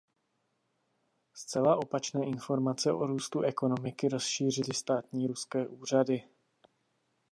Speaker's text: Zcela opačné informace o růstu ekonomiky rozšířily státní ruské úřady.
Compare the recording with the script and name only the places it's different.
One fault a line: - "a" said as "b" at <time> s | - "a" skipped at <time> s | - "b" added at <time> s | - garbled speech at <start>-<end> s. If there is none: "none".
none